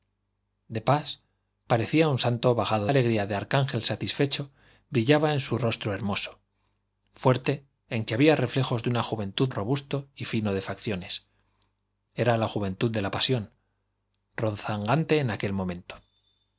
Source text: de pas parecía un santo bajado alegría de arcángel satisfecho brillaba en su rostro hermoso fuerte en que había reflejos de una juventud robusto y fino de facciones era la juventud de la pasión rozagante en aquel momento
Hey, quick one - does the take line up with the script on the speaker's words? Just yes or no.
yes